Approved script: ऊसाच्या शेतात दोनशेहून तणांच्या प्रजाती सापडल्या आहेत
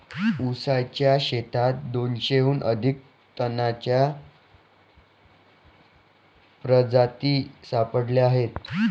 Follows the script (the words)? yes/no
no